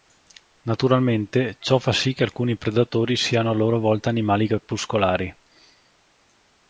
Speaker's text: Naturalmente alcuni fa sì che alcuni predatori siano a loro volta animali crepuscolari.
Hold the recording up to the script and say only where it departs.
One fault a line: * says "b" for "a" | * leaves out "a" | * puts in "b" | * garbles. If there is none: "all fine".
* says "ciò" for "alcuni"